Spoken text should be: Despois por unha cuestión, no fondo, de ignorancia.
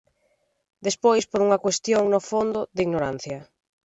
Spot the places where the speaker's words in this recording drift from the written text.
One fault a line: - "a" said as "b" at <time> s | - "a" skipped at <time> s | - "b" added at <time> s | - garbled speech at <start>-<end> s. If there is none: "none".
none